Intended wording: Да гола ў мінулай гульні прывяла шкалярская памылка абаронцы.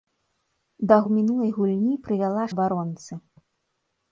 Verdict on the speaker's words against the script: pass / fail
fail